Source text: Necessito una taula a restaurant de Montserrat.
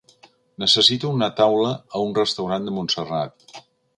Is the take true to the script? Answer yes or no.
no